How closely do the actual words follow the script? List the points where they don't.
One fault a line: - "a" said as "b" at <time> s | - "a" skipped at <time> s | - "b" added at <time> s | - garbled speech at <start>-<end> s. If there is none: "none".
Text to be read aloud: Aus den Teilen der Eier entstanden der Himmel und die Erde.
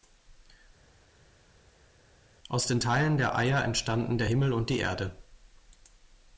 none